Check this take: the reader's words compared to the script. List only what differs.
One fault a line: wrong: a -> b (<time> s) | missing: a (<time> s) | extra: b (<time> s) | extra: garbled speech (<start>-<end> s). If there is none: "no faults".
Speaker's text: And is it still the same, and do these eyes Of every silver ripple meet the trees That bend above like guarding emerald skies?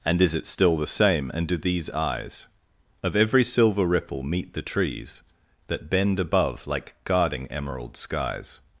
no faults